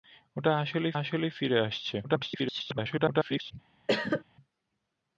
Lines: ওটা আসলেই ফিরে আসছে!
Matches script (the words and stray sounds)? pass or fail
fail